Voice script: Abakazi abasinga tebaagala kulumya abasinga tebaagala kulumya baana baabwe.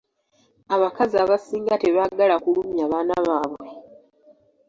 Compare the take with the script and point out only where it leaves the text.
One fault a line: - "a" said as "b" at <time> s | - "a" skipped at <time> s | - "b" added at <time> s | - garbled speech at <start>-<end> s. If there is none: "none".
- "abasinga tebaagala kulumya" skipped at 2.8 s